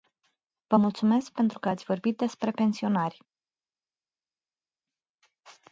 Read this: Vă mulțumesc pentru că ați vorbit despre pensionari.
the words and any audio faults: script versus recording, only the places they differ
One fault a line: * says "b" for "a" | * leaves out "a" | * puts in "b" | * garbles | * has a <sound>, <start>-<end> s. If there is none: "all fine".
all fine